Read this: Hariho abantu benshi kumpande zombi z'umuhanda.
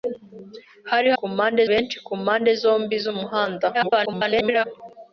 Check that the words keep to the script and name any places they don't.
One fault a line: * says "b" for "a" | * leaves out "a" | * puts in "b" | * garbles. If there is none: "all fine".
* says "kumpande" for "abantu"
* garbles